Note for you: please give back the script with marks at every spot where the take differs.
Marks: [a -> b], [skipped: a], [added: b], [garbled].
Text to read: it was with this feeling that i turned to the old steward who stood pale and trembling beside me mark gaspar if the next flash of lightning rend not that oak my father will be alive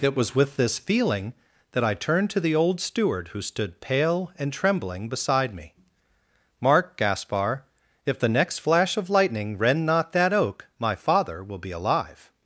it was with this feeling that i turned to the old steward who stood pale and trembling beside me mark gaspar if the next flash of lightning rend not that oak my father will be alive